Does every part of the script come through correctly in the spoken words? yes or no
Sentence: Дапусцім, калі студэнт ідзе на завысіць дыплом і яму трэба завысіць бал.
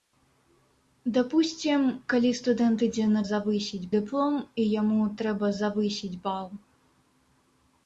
yes